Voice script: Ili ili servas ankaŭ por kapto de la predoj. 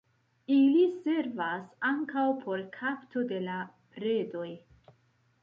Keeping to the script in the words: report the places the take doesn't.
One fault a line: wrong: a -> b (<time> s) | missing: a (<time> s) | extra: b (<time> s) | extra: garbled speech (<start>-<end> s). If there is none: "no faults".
missing: ili (0.8 s)